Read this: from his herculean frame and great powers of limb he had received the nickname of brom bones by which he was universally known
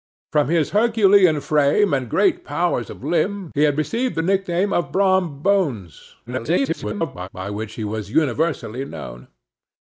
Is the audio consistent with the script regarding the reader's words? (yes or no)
no